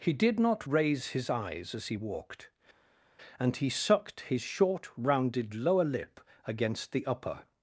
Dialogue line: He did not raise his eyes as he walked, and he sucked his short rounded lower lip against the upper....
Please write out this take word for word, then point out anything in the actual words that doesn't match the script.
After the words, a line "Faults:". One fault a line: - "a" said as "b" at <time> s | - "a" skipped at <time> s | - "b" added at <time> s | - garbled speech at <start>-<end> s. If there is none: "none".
He did not raise his eyes as he walked, and he sucked his short rounded lower lip against the upper....
Faults:
none